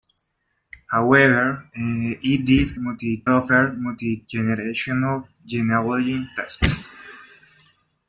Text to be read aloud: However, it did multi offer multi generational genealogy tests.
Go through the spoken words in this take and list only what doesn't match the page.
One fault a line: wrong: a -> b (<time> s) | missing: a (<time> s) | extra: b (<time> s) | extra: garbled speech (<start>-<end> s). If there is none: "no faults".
no faults